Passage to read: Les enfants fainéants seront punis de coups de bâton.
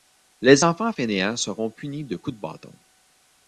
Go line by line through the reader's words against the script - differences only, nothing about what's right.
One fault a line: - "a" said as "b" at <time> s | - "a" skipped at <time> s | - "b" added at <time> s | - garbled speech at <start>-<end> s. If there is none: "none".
none